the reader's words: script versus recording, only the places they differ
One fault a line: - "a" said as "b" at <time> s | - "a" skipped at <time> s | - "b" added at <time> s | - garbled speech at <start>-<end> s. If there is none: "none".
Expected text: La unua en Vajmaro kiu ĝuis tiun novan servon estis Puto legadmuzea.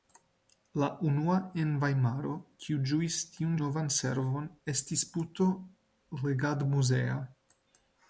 none